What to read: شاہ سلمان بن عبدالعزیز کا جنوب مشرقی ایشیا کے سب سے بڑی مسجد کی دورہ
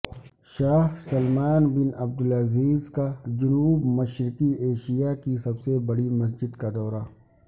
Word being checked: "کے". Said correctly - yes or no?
no